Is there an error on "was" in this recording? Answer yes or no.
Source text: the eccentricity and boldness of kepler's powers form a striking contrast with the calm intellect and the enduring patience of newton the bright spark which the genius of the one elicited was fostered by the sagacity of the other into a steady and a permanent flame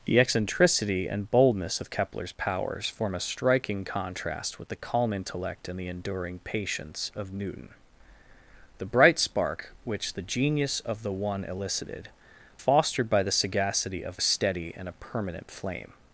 yes